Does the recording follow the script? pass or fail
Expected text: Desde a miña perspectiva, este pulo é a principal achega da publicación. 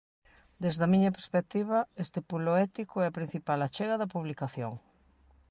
fail